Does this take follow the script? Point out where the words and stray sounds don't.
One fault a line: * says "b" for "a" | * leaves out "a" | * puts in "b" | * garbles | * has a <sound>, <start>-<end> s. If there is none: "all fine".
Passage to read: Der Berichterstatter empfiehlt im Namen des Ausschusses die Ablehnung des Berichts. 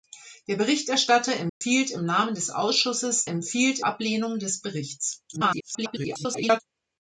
* has a dropout, 1.5-1.6 s
* says "empfiehlt" for "die"
* garbles